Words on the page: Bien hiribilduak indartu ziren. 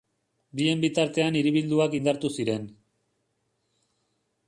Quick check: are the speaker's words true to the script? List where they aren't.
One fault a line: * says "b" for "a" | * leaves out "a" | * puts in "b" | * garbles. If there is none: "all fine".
* puts in "bitartean"